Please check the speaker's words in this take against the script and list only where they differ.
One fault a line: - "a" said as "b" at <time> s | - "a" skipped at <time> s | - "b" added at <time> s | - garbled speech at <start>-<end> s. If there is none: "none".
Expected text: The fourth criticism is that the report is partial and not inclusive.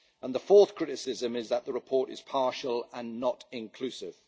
none